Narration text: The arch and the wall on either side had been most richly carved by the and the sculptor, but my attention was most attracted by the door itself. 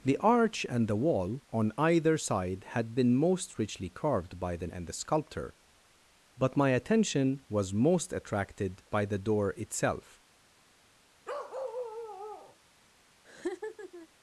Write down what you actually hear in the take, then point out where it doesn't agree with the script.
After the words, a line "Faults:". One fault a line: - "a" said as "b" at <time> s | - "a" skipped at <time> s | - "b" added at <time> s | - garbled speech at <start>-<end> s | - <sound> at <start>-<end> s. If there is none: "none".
The arch and the wall on either side had been most richly carved by the and the sculptor, but my attention was most attracted by the door itself.
Faults:
- bark at 11.2-12.6 s
- laugh at 13.2-14.1 s